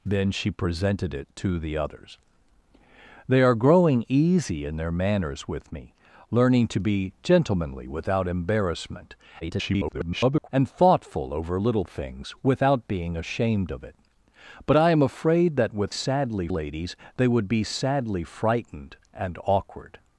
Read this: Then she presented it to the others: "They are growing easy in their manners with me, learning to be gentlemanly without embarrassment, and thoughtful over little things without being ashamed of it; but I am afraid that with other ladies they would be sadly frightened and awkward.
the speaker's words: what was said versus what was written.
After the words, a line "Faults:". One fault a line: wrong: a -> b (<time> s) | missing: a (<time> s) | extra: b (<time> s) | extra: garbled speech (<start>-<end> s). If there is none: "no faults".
Then she presented it to the others: "They are growing easy in their manners with me, learning to be gentlemanly without embarrassment, [garbled] and thoughtful over little things without being ashamed of it; but I am afraid that with sadly ladies they would be sadly frightened and awkward.
Faults:
extra: garbled speech (9.4-10.5 s)
wrong: other -> sadly (15.9 s)